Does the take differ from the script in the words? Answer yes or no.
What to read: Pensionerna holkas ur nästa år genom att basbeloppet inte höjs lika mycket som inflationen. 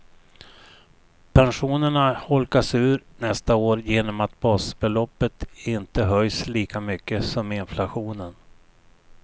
no